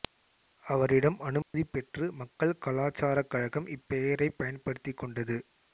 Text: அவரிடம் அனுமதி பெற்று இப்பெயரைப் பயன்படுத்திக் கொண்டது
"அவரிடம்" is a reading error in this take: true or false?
false